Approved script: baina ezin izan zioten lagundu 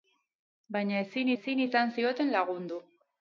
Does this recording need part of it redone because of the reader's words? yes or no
yes